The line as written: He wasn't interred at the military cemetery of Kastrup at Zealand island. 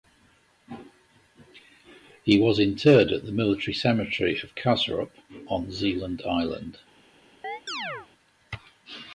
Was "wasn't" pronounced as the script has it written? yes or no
no